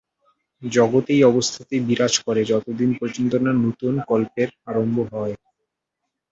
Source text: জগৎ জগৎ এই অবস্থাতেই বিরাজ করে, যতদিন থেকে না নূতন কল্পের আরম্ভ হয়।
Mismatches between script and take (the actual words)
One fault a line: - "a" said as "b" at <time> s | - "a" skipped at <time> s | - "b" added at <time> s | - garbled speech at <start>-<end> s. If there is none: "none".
- "জগৎ" skipped at 1.1 s
- "থেকে" said as "পর্যন্ত" at 3.0 s